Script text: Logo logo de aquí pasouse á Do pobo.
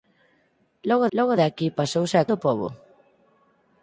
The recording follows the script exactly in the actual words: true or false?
true